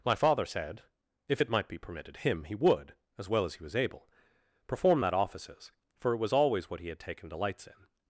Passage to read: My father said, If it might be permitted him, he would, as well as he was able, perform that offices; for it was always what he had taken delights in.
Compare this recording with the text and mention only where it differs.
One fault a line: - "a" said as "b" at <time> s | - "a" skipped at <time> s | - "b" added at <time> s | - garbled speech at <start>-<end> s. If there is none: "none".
none